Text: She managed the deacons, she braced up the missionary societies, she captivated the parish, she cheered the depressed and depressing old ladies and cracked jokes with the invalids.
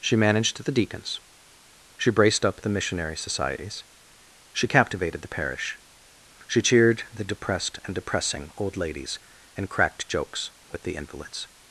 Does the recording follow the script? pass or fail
pass